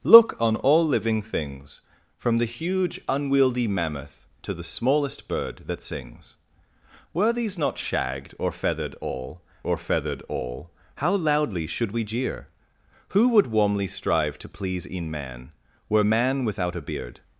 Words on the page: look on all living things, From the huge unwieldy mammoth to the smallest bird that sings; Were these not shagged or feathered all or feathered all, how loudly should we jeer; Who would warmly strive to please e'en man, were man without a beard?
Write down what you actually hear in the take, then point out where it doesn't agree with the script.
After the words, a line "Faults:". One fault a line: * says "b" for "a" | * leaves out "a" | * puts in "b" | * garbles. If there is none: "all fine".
look on all living things, From the huge unwieldy mammoth to the smallest bird that sings; Were these not shagged or feathered all or feathered all, how loudly should we jeer; Who would warmly strive to please e'en man, were man without a beard?
Faults:
all fine